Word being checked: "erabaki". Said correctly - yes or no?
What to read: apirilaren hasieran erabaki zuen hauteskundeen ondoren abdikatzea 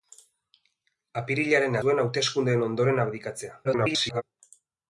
no